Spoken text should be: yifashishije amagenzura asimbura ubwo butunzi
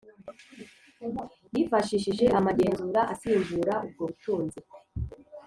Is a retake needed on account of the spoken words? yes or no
no